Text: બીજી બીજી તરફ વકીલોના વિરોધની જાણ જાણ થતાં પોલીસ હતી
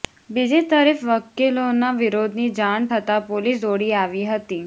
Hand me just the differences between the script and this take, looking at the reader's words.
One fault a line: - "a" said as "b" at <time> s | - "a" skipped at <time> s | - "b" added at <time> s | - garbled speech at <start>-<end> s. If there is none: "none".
- "બીજી" skipped at 0.6 s
- "જાણ" skipped at 2.9 s
- "દોડી આવી" added at 3.6 s